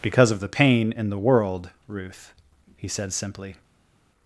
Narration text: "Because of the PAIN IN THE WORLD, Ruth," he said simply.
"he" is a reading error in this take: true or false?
false